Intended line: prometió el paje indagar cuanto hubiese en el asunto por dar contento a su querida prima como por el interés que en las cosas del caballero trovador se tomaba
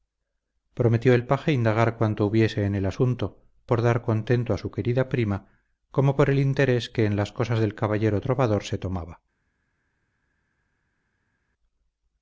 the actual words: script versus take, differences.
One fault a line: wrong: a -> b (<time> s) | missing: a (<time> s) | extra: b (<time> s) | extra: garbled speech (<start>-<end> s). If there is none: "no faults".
no faults